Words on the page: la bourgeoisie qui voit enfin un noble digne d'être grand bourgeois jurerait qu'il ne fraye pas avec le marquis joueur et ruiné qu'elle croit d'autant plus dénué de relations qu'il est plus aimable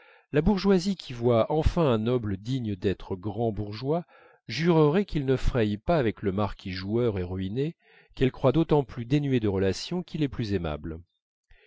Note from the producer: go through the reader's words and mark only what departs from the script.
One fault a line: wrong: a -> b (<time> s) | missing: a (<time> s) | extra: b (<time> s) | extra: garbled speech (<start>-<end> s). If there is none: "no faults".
no faults